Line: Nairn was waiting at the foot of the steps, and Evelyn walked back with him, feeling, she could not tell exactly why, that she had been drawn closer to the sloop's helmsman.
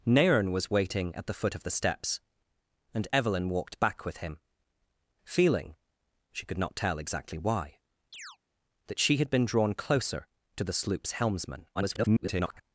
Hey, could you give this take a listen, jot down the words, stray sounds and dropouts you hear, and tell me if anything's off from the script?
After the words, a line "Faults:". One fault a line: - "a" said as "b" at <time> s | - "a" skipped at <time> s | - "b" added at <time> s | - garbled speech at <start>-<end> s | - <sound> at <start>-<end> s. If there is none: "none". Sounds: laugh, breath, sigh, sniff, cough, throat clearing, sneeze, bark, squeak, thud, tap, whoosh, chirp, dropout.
Nairn was waiting at the foot of the steps, and Evelyn walked back with him, feeling, she could not tell exactly why, that she had been drawn closer to the sloop's helmsman. [garbled]
Faults:
- chirp at 8.1-8.4 s
- garbled speech at 11.7-12.6 s